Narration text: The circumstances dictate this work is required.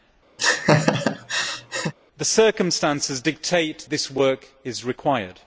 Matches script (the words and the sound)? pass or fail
fail